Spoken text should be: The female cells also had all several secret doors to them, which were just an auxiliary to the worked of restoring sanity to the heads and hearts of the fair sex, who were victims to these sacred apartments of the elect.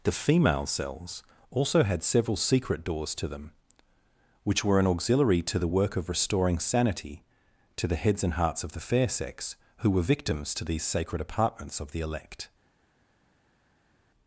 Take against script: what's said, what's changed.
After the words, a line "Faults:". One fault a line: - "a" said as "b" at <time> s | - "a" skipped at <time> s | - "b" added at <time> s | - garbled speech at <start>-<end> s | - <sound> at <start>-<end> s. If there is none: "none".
The female cells also had several secret doors to them, which were an auxiliary to the work of restoring sanity to the heads and hearts of the fair sex, who were victims to these sacred apartments of the elect.
Faults:
- "all" skipped at 2.0 s
- "just" skipped at 4.8 s
- "worked" said as "work" at 5.7 s